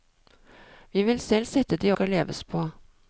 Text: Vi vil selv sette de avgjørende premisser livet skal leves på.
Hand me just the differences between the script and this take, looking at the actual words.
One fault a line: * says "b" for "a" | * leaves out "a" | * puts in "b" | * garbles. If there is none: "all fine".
* leaves out "avgjørende premisser livet"